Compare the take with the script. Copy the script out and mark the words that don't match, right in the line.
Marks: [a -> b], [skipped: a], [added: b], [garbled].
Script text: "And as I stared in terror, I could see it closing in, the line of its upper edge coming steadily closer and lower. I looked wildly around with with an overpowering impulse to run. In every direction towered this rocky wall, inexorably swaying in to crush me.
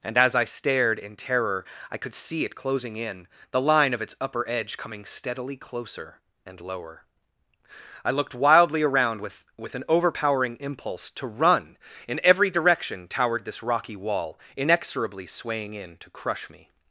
"And as I stared in terror, I could see it closing in, the line of its upper edge coming steadily closer and lower. I looked wildly around with with an overpowering impulse to run. In every direction towered this rocky wall, inexorably swaying in to crush me.